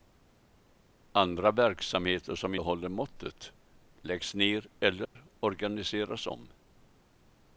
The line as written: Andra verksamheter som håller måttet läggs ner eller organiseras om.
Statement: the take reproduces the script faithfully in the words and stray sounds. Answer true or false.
false